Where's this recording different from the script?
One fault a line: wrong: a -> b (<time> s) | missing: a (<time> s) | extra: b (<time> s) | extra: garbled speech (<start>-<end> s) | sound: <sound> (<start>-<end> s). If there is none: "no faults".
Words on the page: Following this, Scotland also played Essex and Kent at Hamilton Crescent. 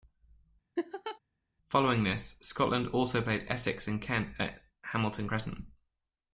sound: laugh (0.8-1.2 s)